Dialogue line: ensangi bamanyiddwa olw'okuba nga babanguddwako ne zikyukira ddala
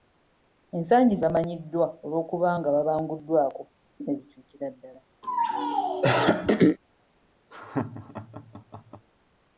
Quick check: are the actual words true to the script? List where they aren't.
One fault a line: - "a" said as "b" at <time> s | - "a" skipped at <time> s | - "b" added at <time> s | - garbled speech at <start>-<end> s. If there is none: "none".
none